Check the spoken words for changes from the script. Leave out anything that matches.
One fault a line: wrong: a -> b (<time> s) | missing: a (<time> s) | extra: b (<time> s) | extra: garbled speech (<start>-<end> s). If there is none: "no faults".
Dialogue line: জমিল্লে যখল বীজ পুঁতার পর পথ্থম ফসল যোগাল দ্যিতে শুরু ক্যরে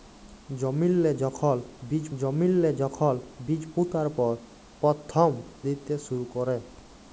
extra: জমিল্লে যখল বীজ (2.2 s)
missing: ফসল যোগাল (5.3 s)